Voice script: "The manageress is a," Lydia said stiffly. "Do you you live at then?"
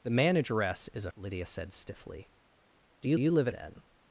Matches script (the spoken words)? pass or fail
pass